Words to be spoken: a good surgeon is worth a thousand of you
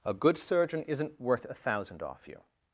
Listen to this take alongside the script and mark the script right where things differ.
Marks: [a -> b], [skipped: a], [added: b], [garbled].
a good surgeon [is -> isn't] worth a thousand [of -> off] you